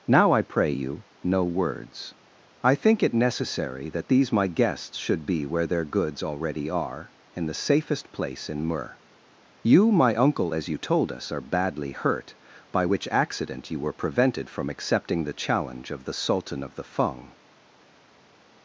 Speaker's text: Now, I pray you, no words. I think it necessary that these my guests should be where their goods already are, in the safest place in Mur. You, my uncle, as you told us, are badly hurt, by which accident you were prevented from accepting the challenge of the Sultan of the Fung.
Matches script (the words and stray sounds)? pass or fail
pass